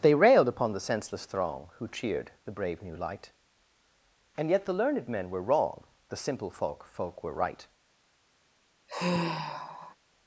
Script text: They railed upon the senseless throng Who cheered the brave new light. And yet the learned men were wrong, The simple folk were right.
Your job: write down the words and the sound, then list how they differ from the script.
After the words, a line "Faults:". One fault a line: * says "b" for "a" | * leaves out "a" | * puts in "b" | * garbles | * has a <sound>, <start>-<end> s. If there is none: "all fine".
They railed upon the senseless throng Who cheered the brave new light. And yet the learned men were wrong, The simple folk folk were right.
Faults:
* puts in "folk"
* has a sigh, 8.9-10.0 s